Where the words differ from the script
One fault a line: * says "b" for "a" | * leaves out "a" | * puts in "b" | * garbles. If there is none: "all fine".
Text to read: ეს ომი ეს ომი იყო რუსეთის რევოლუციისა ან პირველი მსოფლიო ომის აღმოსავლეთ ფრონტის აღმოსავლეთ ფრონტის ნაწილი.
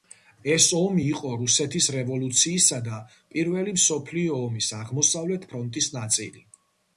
* leaves out "ეს ომი"
* says "და" for "ან"
* leaves out "აღმოსავლეთ ფრონტის"